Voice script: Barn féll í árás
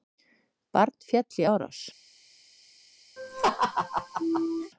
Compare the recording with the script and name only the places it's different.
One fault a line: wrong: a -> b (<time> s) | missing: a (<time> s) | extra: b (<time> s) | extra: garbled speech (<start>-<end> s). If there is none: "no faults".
no faults